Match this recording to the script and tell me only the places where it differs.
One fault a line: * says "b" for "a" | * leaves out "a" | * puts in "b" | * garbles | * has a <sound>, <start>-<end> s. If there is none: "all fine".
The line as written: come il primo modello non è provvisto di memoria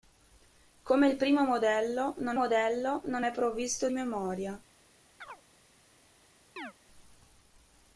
* puts in "modello non"
* leaves out "di"
* has a chirp, 5.2-5.4 s
* has a chirp, 6.6-6.7 s